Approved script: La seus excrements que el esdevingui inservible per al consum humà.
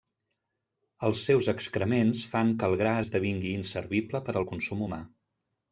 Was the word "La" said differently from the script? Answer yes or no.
yes